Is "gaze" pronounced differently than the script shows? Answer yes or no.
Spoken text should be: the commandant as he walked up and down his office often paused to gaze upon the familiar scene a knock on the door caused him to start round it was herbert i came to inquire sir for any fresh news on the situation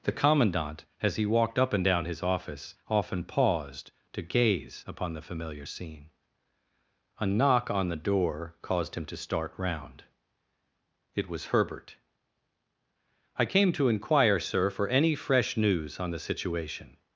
no